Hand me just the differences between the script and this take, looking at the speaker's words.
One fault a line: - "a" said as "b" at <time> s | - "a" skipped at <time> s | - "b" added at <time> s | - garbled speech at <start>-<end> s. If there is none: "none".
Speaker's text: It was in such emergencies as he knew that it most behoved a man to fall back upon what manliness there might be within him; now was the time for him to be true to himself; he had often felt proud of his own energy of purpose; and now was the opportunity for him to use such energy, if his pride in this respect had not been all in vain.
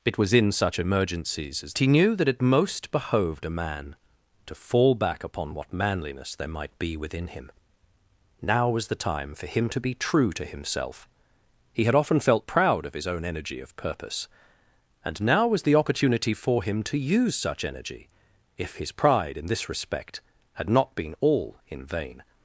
none